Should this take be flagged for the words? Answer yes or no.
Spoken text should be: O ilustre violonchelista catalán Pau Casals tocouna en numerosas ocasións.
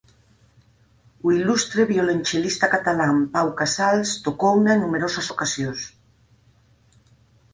no